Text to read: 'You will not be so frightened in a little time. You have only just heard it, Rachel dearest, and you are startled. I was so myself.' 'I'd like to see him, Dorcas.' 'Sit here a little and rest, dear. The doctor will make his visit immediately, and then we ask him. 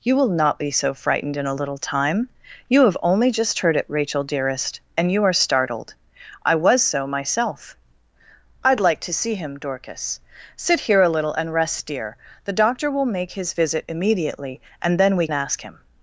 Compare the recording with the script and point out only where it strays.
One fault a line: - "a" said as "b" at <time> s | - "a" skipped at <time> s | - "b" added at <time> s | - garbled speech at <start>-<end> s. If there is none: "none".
none